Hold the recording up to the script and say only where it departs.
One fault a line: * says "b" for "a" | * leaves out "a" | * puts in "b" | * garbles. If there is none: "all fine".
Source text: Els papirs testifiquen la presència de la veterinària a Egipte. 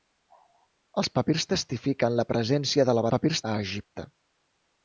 * says "papirs" for "veterinària"